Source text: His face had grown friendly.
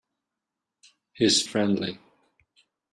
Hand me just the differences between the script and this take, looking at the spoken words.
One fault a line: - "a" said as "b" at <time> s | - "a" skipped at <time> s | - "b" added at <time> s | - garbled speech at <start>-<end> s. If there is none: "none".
- "face had grown" skipped at 1.4 s